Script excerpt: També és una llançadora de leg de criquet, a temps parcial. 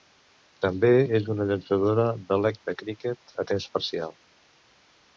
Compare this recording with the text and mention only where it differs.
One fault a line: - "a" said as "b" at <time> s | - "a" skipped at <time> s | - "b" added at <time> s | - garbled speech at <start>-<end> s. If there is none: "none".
none